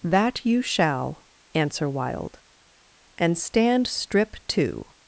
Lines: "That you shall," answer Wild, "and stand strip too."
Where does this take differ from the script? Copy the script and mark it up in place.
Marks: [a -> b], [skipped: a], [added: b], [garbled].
"That you shall," answer Wild, "and stand strip too."